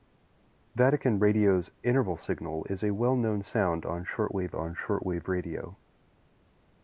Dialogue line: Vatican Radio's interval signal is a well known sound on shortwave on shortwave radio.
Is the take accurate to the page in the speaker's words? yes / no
yes